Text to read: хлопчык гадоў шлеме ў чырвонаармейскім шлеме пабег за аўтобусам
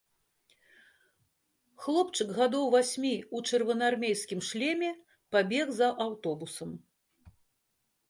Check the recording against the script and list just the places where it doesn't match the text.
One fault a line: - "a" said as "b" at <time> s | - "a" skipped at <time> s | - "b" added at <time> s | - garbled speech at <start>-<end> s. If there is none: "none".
- "шлеме" said as "васьмі" at 2.8 s